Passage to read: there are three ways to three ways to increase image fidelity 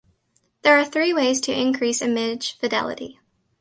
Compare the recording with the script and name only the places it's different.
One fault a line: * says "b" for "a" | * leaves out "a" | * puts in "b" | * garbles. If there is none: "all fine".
* leaves out "three ways to"